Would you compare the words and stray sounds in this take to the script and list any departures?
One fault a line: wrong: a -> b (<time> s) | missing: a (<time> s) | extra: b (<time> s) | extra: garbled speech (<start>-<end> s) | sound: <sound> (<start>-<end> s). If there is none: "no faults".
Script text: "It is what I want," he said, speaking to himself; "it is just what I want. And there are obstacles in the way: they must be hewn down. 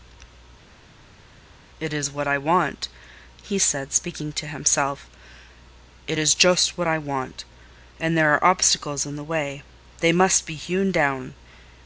no faults